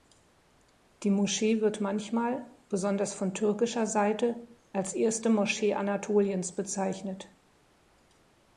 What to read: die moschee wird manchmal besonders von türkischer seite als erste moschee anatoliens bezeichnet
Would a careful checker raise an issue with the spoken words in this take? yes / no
no